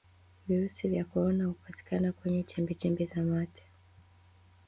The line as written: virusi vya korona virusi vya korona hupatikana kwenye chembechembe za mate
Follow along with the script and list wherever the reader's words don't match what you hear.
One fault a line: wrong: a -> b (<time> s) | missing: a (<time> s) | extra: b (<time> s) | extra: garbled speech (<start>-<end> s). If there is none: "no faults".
missing: virusi vya korona (1.4 s)